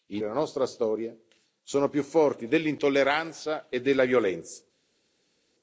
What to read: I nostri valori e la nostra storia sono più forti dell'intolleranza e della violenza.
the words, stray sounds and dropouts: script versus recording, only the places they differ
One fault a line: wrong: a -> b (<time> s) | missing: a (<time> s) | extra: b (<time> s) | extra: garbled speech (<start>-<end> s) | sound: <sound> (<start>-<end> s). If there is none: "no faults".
missing: nostri valori (0.2 s)